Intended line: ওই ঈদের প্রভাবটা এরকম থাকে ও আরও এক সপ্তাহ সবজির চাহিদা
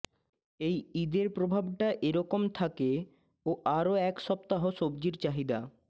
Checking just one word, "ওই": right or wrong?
wrong